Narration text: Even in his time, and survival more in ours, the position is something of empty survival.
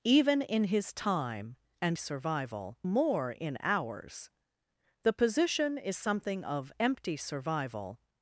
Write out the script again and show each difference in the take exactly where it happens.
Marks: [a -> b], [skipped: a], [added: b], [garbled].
Even in his time, and survival more in ours, the position is something of empty survival.